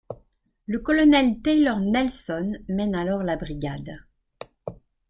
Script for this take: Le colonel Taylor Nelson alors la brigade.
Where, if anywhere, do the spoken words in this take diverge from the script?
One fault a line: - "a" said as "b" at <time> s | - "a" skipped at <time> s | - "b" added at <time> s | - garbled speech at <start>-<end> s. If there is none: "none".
- "mène" added at 2.7 s